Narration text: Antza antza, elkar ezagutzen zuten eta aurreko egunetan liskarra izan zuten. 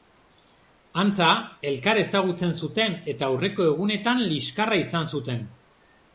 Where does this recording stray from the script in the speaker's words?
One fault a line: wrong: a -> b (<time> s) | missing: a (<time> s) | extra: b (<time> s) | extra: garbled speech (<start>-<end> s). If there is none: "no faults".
missing: antza (1.3 s)